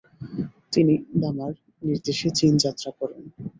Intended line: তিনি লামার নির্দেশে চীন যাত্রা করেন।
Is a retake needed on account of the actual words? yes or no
no